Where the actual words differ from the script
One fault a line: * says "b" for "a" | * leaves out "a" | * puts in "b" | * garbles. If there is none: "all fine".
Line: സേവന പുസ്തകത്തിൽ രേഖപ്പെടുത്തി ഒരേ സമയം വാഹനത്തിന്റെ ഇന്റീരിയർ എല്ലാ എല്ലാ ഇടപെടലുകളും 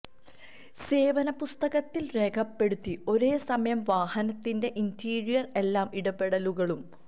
* leaves out "എല്ലാ"